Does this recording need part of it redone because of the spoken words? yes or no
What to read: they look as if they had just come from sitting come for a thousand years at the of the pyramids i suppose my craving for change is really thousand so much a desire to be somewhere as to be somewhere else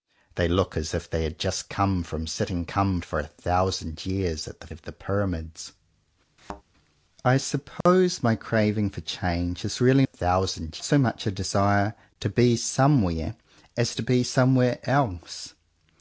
no